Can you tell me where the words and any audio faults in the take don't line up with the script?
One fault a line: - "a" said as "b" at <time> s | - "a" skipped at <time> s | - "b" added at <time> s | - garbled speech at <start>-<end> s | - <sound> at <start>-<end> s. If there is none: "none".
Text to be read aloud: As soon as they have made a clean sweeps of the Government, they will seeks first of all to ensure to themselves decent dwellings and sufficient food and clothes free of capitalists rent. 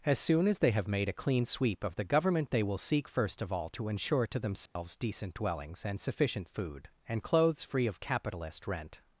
- "sweeps" said as "sweep" at 1.4 s
- "seeks" said as "seek" at 2.8 s
- dropout at 4.7-4.8 s
- "capitalists" said as "capitalist" at 8.0 s